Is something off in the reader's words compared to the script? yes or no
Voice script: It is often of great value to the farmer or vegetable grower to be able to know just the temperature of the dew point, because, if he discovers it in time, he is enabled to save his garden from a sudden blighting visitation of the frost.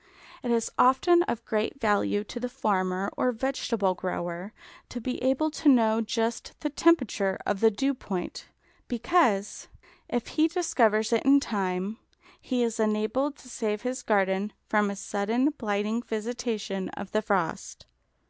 no